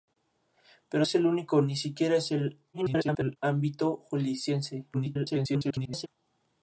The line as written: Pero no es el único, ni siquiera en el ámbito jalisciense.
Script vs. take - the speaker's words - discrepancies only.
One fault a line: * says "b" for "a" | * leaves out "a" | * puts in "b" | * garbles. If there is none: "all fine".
* leaves out "no"
* garbles
* garbles